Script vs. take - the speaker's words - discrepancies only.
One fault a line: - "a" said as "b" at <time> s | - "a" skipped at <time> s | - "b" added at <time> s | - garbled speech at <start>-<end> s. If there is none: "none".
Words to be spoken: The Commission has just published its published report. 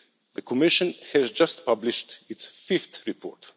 - "published" said as "fifth" at 2.7 s